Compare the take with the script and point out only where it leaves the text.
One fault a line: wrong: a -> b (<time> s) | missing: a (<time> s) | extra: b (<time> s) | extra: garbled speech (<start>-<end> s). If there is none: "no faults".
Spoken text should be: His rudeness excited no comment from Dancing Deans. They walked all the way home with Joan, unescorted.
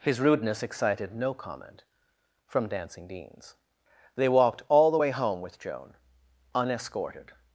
no faults